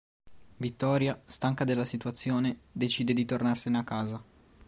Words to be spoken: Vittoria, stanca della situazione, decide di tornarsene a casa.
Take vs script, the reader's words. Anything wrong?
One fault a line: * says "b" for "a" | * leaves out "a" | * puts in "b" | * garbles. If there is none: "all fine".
all fine